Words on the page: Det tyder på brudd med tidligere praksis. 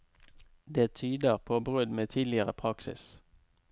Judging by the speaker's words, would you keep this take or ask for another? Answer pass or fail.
pass